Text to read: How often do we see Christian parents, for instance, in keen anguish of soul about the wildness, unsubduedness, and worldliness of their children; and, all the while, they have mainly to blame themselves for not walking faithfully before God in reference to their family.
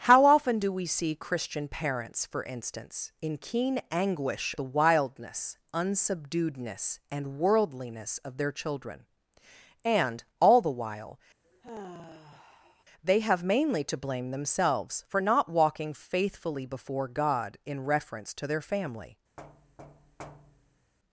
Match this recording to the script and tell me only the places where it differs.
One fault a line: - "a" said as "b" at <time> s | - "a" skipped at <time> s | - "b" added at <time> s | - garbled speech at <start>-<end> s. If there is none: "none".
- "of soul about" skipped at 4.5 s